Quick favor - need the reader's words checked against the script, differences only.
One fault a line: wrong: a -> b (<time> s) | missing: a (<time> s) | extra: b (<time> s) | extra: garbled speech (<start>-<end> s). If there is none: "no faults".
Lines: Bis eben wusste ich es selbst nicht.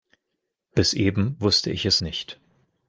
missing: selbst (2.0 s)